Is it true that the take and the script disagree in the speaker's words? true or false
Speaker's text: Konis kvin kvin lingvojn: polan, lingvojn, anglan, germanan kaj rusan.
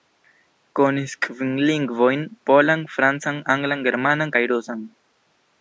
true